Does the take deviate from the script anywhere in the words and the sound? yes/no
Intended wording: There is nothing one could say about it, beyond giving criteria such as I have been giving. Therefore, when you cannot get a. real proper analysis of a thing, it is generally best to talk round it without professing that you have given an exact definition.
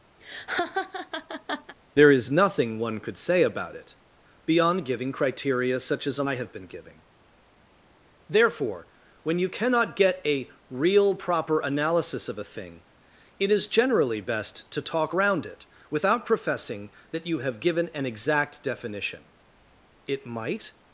yes